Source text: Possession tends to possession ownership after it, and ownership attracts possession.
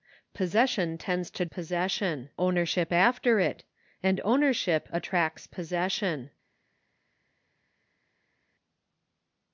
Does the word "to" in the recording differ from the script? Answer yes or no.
no